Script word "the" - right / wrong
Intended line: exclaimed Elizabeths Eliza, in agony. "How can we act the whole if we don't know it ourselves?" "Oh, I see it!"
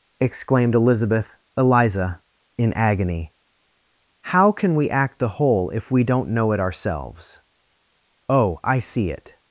right